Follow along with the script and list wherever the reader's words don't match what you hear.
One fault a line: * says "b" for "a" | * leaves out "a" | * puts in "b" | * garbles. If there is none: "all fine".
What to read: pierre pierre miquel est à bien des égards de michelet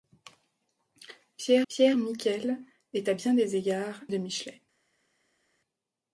all fine